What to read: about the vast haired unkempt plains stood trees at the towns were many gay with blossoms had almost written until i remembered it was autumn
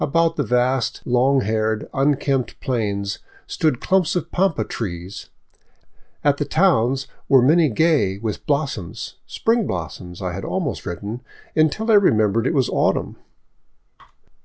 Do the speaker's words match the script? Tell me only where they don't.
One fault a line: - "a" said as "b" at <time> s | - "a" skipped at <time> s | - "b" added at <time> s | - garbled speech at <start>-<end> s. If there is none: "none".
- "long" added at 1.1 s
- "clumps of pampa" added at 3.8 s
- "spring blossoms i" added at 9.3 s